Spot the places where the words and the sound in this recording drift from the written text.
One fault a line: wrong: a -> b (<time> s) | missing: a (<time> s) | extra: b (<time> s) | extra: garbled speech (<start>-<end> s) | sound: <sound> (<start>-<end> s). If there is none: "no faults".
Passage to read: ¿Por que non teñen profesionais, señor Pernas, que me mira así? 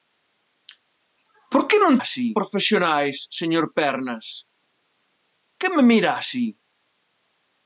wrong: teñen -> así (2.0 s)